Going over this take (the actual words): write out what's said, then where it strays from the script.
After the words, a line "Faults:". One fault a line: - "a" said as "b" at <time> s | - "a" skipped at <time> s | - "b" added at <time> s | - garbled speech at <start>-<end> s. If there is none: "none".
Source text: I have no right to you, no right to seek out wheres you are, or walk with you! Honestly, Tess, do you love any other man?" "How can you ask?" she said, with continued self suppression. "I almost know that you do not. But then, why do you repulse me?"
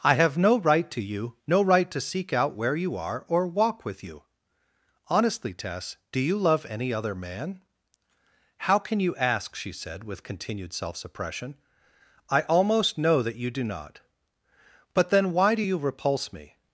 I have no right to you, no right to seek out where you are, or walk with you! Honestly, Tess, do you love any other man?" "How can you ask?" she said, with continued self suppression. "I almost know that you do not. But then, why do you repulse me?"
Faults:
- "wheres" said as "where" at 2.5 s